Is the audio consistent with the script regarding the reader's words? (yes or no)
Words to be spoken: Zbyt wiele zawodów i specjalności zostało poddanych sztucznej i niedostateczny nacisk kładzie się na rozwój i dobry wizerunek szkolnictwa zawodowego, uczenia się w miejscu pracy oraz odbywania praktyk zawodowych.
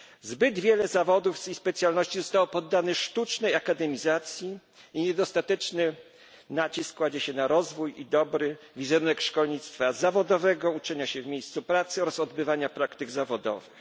no